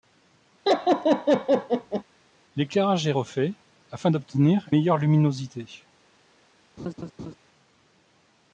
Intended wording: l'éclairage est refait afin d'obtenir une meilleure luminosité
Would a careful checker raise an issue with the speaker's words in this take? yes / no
yes